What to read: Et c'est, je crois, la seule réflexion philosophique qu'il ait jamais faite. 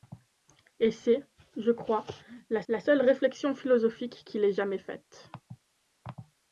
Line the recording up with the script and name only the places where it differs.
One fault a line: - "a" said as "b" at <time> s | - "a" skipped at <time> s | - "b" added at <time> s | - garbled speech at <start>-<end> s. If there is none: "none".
- "la" added at 2.7 s